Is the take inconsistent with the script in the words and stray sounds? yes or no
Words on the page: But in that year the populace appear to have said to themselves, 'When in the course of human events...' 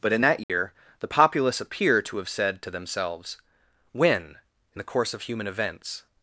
yes